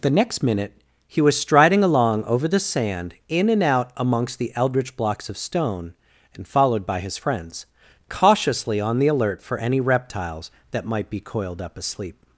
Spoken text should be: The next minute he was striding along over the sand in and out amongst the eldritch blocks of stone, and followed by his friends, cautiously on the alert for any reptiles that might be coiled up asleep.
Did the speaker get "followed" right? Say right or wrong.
right